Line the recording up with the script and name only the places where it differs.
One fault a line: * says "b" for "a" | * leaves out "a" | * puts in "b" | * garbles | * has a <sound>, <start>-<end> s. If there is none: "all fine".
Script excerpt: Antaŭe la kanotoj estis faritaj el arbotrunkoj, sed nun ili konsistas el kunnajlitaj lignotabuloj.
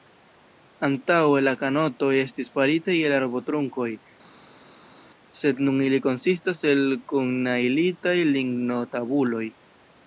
all fine